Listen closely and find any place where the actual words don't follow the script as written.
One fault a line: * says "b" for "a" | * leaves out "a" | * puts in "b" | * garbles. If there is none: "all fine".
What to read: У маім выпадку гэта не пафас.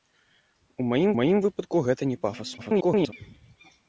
* puts in "маім"
* garbles